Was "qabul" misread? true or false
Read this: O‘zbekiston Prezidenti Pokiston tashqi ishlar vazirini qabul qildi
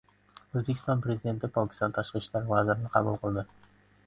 false